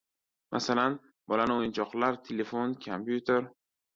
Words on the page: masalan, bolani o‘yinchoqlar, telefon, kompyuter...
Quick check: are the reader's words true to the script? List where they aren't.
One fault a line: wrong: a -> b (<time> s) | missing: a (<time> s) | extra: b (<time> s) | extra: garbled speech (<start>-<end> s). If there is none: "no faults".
no faults